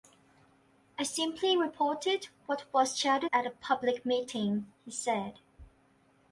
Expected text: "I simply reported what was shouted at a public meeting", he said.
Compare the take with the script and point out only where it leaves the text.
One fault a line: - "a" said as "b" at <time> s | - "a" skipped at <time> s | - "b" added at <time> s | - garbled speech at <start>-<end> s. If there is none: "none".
none